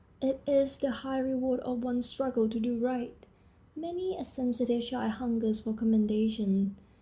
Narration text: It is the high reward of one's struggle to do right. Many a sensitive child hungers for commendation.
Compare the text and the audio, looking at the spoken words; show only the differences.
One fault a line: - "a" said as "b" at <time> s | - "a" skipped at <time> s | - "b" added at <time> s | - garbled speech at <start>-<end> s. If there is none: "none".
none